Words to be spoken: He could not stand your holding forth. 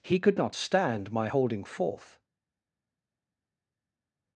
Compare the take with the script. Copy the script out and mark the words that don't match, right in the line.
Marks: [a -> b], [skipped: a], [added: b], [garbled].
He could not stand [your -> my] holding forth.